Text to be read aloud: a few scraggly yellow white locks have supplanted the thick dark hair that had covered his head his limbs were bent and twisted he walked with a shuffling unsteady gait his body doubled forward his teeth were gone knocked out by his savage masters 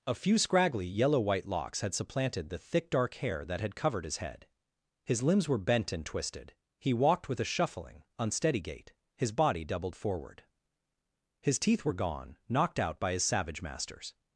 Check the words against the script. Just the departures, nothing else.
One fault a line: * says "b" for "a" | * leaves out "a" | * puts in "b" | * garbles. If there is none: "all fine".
* says "had" for "have"